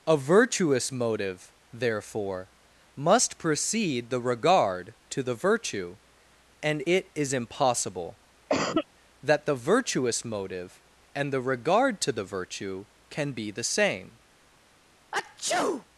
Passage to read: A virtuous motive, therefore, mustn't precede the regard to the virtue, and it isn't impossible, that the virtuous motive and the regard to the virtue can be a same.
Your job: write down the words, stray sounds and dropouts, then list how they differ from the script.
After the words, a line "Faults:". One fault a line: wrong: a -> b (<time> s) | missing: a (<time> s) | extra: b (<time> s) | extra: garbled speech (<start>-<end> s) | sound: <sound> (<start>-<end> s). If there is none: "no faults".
A virtuous motive, therefore, must precede the regard to the virtue, and it is impossible, that the virtuous motive and the regard to the virtue can be the same.
Faults:
wrong: mustn't -> must (3.0 s)
wrong: isn't -> is (7.2 s)
sound: cough (8.5-8.9 s)
wrong: a -> the (13.5 s)
sound: sneeze (15.1-15.9 s)